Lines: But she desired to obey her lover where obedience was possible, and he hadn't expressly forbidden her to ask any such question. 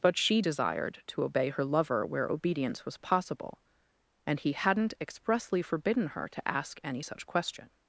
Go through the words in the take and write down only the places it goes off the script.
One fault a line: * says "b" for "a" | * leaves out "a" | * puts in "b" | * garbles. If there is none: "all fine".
all fine